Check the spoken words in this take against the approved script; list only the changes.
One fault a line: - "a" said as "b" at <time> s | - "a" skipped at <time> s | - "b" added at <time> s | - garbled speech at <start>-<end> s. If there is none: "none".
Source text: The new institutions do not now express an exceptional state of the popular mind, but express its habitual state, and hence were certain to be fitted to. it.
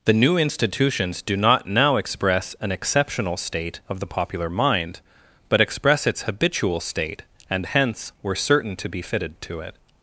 none